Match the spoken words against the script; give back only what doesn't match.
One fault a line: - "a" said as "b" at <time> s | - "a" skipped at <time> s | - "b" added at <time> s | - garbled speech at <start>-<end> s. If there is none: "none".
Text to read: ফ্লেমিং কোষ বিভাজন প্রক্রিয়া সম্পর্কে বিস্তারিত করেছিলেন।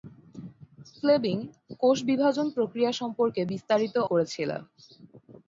none